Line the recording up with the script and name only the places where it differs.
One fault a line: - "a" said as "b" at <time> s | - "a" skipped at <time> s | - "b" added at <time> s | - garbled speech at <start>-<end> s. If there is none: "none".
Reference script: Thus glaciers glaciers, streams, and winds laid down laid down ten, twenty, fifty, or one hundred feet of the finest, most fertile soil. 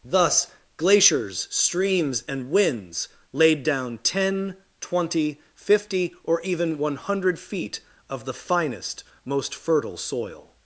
- "glaciers" skipped at 1.5 s
- "laid down" skipped at 4.0 s
- "even" added at 6.4 s